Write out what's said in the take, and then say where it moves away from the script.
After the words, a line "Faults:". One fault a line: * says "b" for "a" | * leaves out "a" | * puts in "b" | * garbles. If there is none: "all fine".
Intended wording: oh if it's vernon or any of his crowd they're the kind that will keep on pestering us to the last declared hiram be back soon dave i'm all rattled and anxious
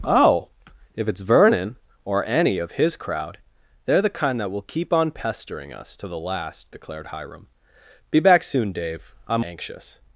oh if it's vernon or any of his crowd they're the kind that will keep on pestering us to the last declared hiram be back soon dave i'm anxious
Faults:
* leaves out "all rattled and"